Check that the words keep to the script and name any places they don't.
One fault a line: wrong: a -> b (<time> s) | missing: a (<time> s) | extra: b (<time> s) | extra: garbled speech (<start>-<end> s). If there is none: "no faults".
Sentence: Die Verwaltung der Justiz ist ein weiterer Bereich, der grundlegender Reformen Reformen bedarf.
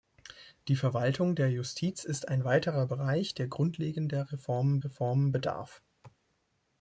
no faults